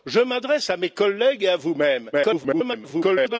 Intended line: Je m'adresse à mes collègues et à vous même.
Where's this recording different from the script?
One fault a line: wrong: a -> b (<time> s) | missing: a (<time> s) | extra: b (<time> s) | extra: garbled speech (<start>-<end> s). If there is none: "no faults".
extra: garbled speech (2.1-3.4 s)